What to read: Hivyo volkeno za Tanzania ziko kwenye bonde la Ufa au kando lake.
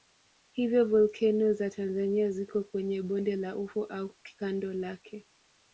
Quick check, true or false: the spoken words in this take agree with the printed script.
true